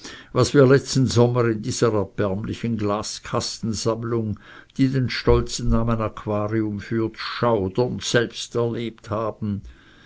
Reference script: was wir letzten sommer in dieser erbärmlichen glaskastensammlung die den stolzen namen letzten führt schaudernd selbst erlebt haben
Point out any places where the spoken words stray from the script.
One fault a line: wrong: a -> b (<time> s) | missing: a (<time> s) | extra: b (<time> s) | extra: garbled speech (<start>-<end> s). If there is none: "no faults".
wrong: letzten -> aquarium (6.0 s)